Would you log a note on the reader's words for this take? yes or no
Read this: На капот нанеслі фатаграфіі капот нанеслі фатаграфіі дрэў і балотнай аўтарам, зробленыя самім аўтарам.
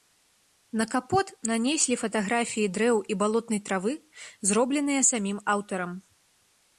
yes